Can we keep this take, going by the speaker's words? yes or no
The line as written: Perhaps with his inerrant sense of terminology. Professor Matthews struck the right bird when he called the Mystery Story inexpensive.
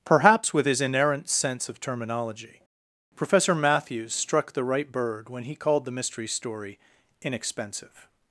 yes